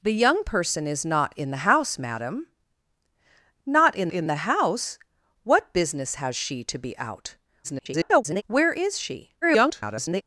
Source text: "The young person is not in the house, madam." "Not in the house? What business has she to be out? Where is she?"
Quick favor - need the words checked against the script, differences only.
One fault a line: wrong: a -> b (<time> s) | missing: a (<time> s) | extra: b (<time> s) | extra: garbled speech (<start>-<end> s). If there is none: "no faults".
extra: in (4.1 s)
extra: garbled speech (7.6-8.4 s)
extra: garbled speech (9.4-10.2 s)